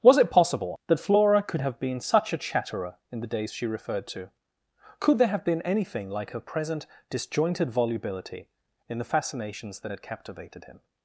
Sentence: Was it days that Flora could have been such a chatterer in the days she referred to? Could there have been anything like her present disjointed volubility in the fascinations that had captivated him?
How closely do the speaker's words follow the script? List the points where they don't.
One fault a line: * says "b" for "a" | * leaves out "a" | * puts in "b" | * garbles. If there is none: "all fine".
* says "possible" for "days"